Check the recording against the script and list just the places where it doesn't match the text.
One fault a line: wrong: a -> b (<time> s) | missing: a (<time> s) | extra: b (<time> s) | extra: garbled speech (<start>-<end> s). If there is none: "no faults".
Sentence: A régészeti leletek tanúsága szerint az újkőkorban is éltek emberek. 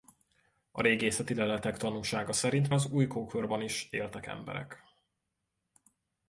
no faults